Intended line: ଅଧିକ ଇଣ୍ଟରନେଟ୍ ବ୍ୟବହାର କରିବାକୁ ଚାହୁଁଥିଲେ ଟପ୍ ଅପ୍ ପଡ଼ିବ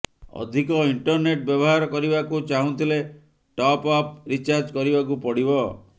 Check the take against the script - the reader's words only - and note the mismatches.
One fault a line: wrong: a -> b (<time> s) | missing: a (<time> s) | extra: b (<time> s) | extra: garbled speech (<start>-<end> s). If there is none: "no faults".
extra: ରିଚାର୍ଜ କରିବାକୁ (4.3 s)